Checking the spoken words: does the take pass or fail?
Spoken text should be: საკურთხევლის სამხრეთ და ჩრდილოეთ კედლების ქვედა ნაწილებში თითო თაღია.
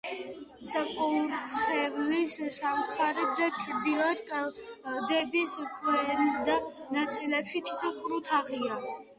fail